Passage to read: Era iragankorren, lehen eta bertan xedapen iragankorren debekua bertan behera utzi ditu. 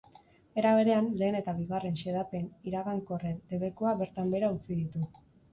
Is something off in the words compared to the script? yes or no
yes